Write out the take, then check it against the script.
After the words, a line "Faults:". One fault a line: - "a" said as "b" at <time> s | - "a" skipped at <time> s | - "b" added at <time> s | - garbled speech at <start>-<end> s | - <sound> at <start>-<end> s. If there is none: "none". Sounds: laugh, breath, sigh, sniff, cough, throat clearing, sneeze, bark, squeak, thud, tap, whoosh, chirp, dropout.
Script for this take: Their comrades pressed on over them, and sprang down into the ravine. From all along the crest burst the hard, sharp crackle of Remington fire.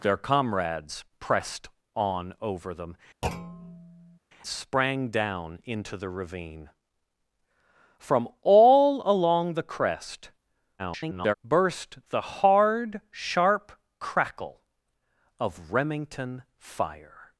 Their comrades pressed on over them, sprang down into the ravine. From all along the crest [garbled] burst the hard, sharp crackle of Remington fire.
Faults:
- "and" skipped at 3.0 s
- thud at 3.2-4.2 s
- garbled speech at 10.8-11.3 s